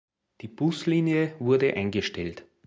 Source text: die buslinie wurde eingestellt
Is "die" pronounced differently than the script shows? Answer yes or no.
no